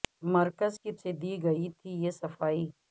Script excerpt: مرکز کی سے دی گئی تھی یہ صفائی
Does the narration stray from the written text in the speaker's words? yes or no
no